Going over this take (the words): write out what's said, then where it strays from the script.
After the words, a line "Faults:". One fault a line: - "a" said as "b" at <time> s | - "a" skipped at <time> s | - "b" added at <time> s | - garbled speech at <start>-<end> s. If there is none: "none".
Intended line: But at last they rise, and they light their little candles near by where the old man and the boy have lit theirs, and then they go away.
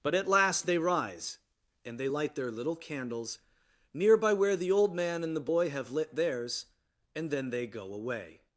But at last they rise, and they light their little candles near by where the old man and the boy have lit theirs, and then they go away.
Faults:
none